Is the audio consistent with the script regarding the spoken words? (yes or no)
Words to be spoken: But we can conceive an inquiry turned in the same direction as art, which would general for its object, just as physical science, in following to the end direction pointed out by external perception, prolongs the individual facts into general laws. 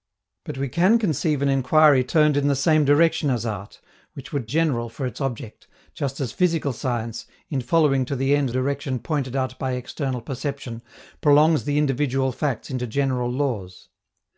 yes